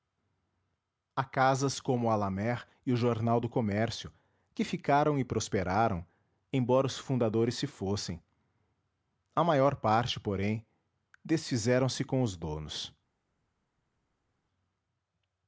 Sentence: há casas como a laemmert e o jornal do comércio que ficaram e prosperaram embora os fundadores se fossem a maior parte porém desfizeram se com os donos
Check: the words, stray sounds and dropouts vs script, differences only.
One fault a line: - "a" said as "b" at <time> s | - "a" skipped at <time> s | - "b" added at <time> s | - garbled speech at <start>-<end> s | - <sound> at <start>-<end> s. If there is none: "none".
none